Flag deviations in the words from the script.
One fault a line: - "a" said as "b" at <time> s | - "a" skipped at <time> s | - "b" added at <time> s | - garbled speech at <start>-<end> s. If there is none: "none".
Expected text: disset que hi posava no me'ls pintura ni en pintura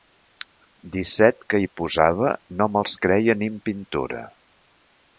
- "pintura" said as "creia" at 3.1 s